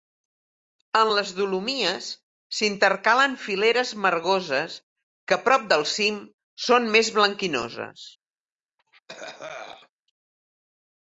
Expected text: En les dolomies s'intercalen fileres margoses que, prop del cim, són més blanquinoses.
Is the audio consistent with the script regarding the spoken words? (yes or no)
yes